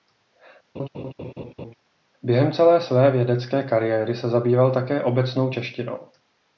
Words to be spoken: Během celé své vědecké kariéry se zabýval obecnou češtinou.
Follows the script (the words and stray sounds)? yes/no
no